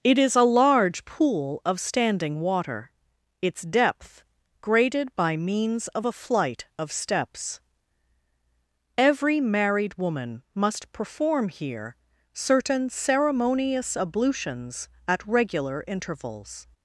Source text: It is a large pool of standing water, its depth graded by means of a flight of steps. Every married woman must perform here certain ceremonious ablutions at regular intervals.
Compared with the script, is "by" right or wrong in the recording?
right